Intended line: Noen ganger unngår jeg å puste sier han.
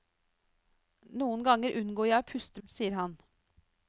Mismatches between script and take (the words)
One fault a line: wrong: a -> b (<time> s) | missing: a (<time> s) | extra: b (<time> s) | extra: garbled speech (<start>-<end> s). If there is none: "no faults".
no faults